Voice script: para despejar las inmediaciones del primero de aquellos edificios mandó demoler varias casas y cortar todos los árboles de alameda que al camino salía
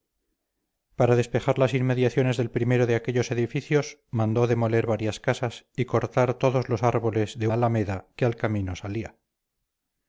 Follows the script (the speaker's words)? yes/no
yes